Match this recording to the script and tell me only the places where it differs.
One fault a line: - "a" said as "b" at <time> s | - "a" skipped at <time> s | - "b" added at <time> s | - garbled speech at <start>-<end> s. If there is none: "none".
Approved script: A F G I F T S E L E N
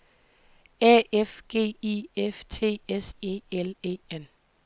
none